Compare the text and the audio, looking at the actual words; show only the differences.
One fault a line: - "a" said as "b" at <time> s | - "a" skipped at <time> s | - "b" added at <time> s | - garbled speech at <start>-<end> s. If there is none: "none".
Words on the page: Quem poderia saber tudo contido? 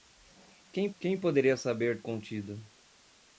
- "quem" added at 1.0 s
- "tudo" skipped at 2.0 s